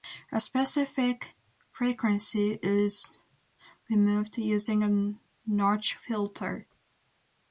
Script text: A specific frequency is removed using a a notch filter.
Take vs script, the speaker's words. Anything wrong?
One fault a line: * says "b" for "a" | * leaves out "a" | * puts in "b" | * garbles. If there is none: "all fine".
* leaves out "a"